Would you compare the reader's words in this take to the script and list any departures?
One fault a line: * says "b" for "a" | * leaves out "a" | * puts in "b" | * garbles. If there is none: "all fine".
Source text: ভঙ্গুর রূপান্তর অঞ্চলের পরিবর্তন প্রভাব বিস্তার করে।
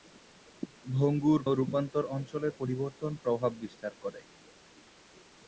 all fine